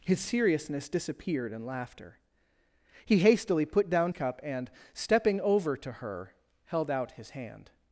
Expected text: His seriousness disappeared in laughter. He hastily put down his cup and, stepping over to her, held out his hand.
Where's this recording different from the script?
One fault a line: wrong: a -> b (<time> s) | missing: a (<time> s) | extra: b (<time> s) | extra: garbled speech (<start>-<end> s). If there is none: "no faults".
missing: his (4.1 s)